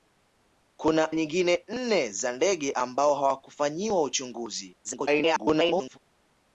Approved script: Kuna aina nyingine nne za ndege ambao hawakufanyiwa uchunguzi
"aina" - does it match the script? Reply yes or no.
no